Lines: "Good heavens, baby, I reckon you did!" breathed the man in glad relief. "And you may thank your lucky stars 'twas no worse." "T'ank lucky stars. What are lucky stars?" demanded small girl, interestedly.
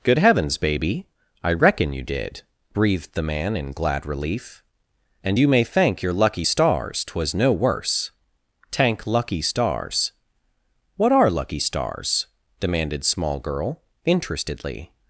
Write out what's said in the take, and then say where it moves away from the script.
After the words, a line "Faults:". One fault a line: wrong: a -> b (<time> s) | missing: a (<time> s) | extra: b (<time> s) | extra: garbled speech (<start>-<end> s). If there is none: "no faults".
"Good heavens, baby, I reckon you did!" breathed the man in glad relief. "And you may thank your lucky stars 'twas no worse." "T'ank lucky stars. What are lucky stars?" demanded small girl, interestedly.
Faults:
no faults